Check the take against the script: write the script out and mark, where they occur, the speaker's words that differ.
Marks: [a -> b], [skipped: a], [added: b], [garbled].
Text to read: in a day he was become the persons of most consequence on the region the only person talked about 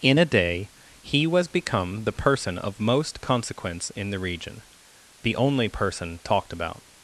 in a day he was become the [persons -> person] of most consequence [on -> in] the region the only person talked about